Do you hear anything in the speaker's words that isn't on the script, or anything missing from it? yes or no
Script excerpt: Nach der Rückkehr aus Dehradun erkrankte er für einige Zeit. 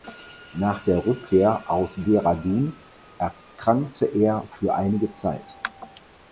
no